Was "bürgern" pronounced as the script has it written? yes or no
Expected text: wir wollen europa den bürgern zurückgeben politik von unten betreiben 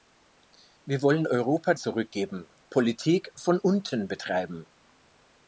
no